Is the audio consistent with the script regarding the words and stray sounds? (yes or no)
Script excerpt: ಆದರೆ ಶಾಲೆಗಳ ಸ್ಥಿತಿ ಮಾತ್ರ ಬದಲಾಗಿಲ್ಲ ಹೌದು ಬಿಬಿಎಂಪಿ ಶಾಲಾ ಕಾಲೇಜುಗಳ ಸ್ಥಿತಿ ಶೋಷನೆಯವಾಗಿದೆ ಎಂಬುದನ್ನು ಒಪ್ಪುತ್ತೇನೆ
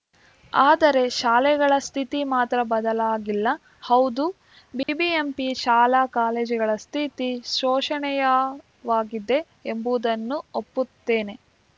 no